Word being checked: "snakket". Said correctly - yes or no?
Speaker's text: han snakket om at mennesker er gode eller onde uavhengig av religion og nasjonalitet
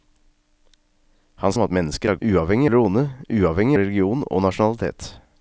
no